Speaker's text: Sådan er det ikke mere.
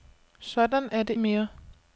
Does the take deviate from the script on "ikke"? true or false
true